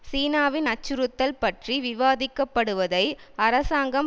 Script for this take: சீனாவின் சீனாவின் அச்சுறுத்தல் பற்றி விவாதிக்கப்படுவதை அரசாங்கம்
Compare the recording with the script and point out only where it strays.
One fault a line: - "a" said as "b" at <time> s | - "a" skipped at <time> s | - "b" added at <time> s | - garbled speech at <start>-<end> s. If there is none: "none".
- "சீனாவின்" skipped at 0.7 s